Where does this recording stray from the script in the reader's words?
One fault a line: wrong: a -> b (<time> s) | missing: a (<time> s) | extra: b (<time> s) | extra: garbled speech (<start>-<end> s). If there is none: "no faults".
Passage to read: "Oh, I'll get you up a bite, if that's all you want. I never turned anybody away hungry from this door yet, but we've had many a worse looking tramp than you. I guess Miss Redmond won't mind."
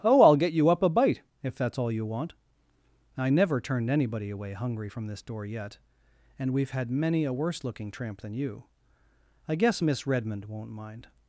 wrong: but -> and (6.4 s)